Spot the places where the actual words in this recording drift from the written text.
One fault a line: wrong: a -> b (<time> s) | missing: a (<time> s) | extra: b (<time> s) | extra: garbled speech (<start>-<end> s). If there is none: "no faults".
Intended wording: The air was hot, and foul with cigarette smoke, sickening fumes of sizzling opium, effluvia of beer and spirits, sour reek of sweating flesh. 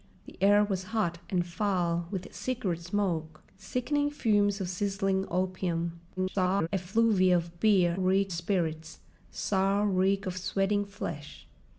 extra: garbled speech (6.2-6.7 s)
wrong: and -> reek (7.9 s)